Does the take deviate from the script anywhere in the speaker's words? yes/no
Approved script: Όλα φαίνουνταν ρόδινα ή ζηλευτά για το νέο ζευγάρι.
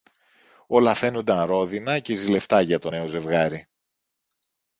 yes